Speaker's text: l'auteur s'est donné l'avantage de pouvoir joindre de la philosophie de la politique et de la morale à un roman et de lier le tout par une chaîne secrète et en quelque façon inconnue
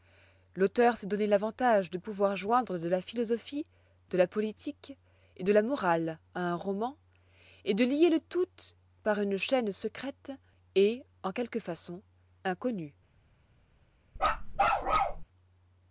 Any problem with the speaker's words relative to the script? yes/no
no